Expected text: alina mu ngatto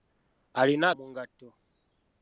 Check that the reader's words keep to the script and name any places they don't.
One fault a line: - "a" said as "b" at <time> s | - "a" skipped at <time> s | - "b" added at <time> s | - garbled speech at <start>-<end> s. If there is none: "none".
none